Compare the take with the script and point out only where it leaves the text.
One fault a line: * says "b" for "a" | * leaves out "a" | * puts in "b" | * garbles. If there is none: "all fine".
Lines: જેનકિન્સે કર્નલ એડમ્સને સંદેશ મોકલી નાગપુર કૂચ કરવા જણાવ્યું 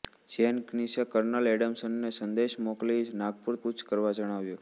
all fine